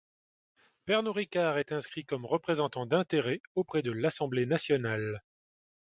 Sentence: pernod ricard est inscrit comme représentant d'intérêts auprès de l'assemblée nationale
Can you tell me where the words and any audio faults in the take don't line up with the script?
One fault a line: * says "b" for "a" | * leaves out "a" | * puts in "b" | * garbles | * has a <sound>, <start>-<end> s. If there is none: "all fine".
all fine